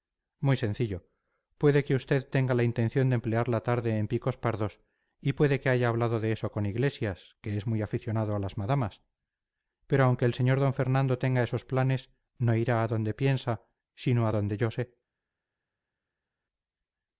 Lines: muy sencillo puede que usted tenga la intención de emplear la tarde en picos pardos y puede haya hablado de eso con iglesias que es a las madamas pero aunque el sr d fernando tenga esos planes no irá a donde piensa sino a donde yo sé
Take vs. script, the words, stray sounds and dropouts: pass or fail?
fail